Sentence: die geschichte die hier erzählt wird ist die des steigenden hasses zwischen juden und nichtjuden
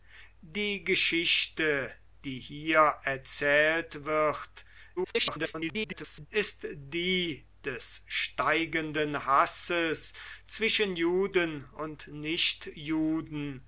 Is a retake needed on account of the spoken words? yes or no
yes